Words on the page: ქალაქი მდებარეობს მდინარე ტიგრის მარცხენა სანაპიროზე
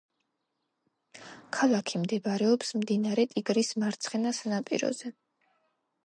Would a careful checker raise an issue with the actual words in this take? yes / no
no